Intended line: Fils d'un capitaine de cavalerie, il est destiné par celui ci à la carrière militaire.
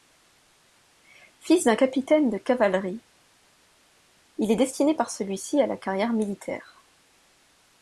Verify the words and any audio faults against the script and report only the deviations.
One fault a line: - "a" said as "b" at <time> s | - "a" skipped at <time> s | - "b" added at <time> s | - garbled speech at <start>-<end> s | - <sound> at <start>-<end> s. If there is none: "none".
none